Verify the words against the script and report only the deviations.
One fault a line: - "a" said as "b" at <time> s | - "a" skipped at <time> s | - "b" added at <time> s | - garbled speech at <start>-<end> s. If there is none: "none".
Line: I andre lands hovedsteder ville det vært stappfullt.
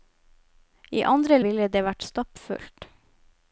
- "lands hovedsteder" skipped at 1.4 s